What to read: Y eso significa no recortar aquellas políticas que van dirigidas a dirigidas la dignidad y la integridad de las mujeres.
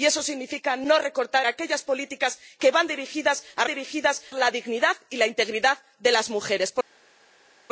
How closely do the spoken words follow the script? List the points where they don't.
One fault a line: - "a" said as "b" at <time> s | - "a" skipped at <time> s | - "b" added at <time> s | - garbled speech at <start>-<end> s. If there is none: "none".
none